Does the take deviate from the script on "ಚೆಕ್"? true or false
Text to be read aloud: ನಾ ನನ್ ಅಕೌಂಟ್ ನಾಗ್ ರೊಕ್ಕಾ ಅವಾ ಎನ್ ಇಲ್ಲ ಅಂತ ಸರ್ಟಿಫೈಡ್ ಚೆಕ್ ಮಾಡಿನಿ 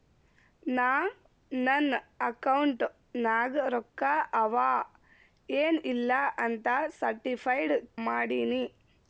true